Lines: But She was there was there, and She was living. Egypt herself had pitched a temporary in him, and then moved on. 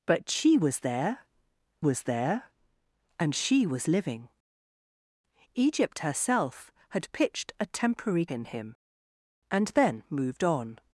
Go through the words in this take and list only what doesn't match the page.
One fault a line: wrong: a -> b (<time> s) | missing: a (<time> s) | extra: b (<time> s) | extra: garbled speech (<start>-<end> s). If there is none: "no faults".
no faults